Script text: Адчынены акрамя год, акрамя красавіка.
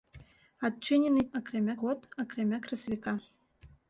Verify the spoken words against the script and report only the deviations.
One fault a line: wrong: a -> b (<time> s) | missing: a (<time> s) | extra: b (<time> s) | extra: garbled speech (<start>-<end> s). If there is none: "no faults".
no faults